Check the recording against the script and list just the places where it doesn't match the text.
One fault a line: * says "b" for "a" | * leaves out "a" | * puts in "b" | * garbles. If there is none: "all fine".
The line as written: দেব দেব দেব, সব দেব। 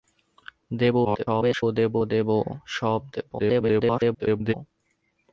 * garbles
* garbles